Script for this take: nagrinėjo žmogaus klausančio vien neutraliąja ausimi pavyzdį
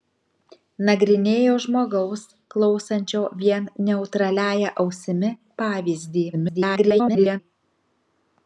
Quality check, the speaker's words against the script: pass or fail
fail